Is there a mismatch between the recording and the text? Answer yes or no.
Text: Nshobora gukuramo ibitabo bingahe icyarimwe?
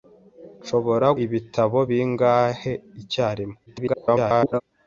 yes